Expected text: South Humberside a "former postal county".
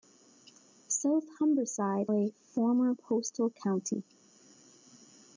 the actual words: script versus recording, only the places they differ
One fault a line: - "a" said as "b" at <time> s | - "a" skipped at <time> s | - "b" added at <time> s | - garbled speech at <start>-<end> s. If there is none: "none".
none